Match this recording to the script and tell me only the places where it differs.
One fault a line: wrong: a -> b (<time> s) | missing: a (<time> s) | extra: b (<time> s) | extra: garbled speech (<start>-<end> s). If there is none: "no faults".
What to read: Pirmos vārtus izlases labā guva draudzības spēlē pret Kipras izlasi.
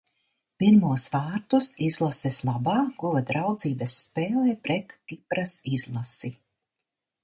no faults